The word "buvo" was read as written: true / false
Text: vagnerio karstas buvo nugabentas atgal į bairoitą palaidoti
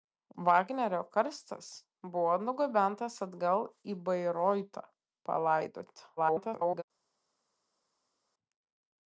true